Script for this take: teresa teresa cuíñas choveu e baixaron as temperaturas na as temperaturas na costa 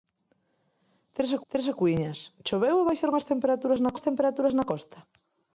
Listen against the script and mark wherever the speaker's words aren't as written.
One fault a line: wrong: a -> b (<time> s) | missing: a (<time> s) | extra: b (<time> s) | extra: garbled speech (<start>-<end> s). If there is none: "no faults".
no faults